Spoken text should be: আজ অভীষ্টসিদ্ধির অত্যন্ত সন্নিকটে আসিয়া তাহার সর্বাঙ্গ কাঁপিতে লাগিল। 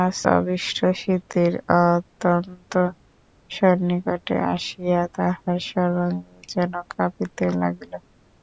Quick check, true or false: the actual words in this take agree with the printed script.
false